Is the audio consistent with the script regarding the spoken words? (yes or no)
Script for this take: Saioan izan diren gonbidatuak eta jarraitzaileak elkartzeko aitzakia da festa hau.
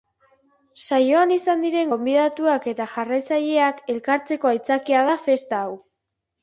yes